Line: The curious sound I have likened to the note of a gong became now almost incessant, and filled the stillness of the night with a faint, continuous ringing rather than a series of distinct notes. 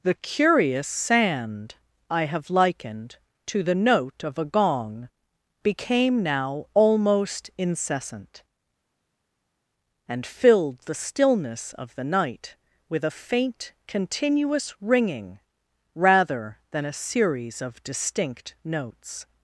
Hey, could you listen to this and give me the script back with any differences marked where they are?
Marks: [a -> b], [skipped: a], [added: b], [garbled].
The curious [sound -> sand] I have likened to the note of a gong became now almost incessant, and filled the stillness of the night with a faint, continuous ringing rather than a series of distinct notes.